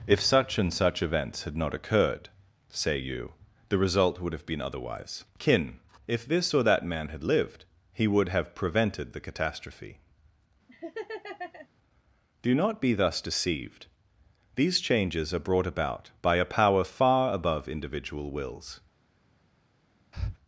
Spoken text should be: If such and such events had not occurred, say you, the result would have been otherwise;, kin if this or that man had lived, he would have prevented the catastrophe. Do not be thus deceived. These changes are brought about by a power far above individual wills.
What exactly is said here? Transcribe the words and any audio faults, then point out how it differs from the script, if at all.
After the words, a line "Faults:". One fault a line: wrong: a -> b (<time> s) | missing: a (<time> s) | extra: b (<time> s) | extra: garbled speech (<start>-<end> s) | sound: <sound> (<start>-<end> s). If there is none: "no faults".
If such and such events had not occurred, say you, the result would have been otherwise;, kin if this or that man had lived, he would have prevented the catastrophe. Do not be thus deceived. These changes are brought about by a power far above individual wills.
Faults:
sound: laugh (10.7-11.7 s)
sound: breath (20.1-20.4 s)